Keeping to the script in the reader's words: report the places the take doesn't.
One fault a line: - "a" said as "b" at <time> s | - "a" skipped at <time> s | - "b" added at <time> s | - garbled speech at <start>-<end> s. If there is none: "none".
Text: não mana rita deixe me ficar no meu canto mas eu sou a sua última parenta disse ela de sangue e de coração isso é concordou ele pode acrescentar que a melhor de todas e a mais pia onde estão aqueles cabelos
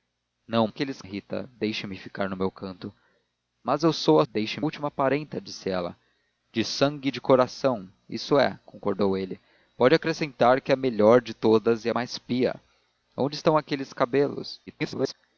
- "mana" said as "aqueles" at 0.7 s
- "sua" said as "deixe" at 4.3 s
- garbled speech at 14.7-15.1 s